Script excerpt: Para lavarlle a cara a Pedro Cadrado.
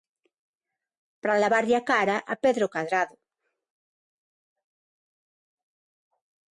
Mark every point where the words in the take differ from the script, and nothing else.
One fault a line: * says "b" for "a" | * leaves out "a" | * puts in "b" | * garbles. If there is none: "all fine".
all fine